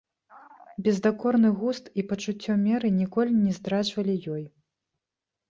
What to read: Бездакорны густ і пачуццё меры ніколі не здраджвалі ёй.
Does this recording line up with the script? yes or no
yes